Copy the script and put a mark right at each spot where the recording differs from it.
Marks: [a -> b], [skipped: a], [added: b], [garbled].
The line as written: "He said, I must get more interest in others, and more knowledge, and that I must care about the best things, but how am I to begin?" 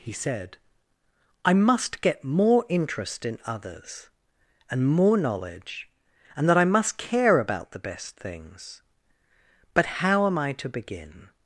"He said, I must get more interest in others, and more knowledge, and that I must care about the best things, but how am I to begin?"